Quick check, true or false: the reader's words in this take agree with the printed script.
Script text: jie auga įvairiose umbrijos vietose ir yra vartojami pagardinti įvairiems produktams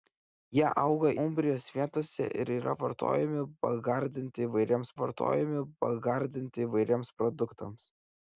false